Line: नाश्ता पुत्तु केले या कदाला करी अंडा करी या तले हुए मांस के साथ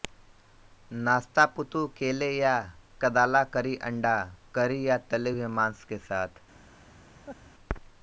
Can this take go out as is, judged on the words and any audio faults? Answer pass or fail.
fail